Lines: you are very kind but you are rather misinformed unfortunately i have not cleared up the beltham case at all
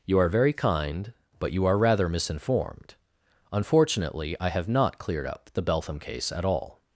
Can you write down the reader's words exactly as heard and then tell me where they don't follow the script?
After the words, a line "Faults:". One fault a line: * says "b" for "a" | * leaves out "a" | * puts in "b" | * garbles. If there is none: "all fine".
you are very kind but you are rather misinformed unfortunately i have not cleared up the beltham case at all
Faults:
all fine